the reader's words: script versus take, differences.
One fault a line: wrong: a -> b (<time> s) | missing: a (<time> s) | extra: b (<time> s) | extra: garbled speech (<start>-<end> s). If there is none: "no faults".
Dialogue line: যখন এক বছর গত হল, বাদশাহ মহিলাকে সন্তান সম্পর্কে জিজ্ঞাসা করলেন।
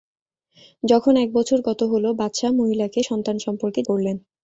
missing: জিজ্ঞাসা (3.8 s)